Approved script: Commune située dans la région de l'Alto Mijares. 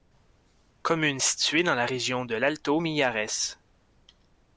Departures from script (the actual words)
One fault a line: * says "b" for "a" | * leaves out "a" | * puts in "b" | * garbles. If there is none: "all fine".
all fine